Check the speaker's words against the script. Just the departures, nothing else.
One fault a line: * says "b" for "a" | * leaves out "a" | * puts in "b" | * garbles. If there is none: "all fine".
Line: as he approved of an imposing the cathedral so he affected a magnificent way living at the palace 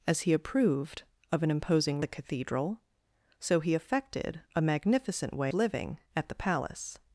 all fine